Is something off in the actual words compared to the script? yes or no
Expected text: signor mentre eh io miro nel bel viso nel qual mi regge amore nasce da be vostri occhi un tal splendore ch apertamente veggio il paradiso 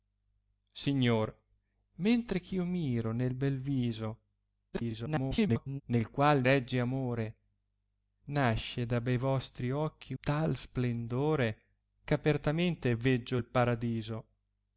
yes